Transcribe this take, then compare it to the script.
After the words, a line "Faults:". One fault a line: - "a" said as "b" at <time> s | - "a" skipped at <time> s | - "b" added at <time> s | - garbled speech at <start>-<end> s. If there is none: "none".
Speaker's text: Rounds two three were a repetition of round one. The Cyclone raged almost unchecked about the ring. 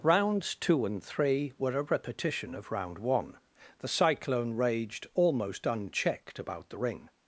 Rounds two and three were a repetition of round one. The Cyclone raged almost unchecked about the ring.
Faults:
- "and" added at 0.9 s